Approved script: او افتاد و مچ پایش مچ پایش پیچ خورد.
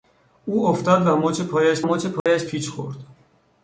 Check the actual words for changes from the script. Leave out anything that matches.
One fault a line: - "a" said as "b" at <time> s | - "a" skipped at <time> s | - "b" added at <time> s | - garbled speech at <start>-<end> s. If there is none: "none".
none